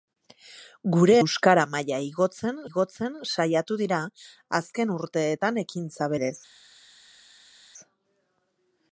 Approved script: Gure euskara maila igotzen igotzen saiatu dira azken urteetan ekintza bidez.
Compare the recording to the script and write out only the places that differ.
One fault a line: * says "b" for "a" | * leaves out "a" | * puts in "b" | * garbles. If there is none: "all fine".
all fine